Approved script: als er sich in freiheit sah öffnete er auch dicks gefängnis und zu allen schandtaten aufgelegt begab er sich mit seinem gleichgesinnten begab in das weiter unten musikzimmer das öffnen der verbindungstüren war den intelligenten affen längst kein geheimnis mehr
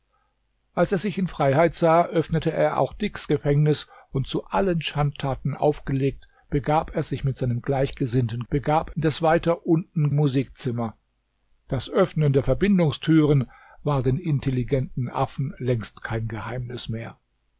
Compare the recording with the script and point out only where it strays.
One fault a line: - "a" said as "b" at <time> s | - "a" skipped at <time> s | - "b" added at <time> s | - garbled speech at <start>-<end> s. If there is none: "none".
none